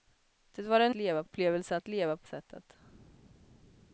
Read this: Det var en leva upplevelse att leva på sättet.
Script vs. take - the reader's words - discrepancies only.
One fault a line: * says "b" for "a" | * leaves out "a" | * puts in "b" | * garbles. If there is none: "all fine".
all fine